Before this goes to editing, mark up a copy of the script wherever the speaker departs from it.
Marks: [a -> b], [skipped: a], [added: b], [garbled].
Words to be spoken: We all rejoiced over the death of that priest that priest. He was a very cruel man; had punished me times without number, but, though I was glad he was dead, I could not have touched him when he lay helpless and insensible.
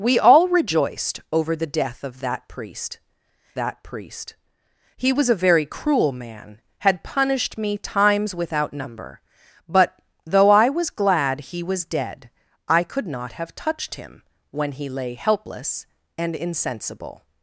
We all rejoiced over the death of that priest that priest. He was a very cruel man; had punished me times without number, but, though I was glad he was dead, I could not have touched him when he lay helpless and insensible.